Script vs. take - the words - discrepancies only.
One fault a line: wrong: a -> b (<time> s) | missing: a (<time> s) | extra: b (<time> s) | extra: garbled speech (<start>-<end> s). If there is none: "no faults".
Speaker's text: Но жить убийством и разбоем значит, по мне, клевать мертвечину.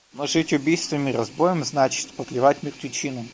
missing: мне (2.2 s)